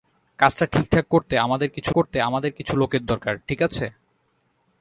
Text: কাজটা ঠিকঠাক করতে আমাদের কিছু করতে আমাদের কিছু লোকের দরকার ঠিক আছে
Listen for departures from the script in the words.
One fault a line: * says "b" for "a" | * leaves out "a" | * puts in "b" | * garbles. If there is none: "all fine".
all fine